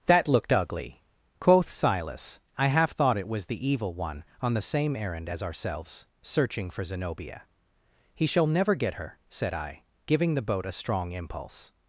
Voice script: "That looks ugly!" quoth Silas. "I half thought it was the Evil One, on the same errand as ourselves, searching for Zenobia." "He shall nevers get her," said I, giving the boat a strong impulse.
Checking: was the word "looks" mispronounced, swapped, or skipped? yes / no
yes